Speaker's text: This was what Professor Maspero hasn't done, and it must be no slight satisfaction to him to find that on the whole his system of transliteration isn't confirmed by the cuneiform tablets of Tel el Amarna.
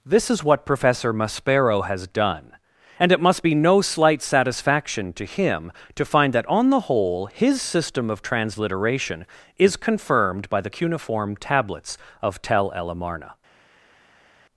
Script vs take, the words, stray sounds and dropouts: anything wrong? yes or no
yes